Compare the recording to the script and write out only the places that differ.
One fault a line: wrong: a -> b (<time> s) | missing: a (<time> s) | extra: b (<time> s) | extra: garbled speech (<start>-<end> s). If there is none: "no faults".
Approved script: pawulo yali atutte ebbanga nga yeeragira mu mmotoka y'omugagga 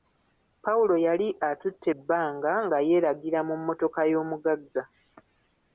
no faults